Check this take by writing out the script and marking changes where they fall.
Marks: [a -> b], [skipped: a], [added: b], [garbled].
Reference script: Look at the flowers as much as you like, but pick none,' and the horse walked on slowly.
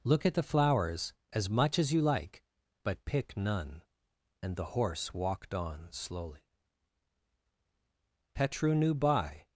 Look at the flowers as much as you like, but pick none,' and the horse walked on slowly. [added: Petru knew by]